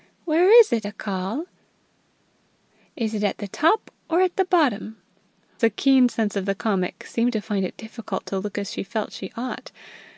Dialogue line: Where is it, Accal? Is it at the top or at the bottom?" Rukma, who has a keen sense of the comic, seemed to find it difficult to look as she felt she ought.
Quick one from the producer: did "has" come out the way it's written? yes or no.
no